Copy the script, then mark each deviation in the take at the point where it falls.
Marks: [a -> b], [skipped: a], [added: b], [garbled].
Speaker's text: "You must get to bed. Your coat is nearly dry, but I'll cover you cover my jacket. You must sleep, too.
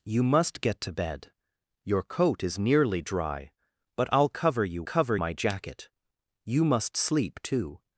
"You must get to bed. Your coat is nearly dry, but I'll cover you cover my jacket. You must sleep, too.